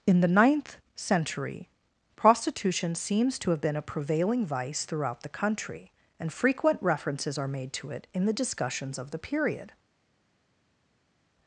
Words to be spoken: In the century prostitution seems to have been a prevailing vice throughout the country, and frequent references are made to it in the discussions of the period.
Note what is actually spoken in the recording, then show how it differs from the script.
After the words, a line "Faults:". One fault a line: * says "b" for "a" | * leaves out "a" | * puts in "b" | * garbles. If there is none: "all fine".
In the ninth century prostitution seems to have been a prevailing vice throughout the country, and frequent references are made to it in the discussions of the period.
Faults:
* puts in "ninth"